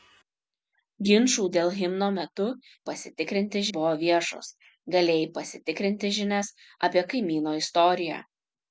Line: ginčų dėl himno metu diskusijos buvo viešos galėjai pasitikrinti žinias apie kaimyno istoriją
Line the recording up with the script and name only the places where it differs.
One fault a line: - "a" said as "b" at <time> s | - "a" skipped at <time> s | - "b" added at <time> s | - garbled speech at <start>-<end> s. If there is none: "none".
- "diskusijos" said as "pasitikrinti" at 2.9 s